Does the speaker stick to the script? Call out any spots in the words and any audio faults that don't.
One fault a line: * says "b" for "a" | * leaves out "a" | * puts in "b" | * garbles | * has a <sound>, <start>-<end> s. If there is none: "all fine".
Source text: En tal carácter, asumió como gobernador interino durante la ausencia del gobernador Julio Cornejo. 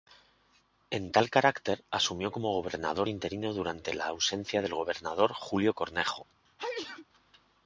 * has a sneeze, 6.4-7.1 s